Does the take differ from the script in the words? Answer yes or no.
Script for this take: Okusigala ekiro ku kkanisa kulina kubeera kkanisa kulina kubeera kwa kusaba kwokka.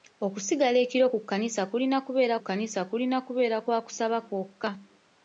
no